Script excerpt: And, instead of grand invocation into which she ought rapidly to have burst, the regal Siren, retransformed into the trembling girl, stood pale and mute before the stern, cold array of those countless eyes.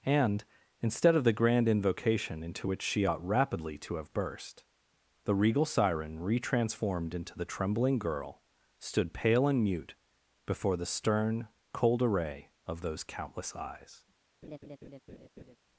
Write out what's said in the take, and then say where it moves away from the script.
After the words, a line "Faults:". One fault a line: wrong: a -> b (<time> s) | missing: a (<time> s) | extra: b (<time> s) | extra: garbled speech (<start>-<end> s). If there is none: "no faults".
And, instead of the grand invocation into which she ought rapidly to have burst, the regal Siren, retransformed into the trembling girl, stood pale and mute before the stern, cold array of those countless eyes.
Faults:
extra: the (1.2 s)